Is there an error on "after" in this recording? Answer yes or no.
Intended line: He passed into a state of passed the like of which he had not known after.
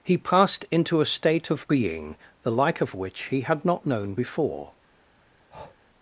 yes